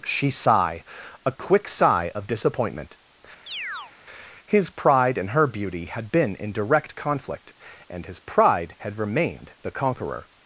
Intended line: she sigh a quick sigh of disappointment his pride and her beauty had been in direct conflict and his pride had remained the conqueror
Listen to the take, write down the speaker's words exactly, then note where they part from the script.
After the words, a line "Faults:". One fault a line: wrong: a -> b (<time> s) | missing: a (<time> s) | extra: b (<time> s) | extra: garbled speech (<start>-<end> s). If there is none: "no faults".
she sigh a quick sigh of disappointment his pride and her beauty had been in direct conflict and his pride had remained the conqueror
Faults:
no faults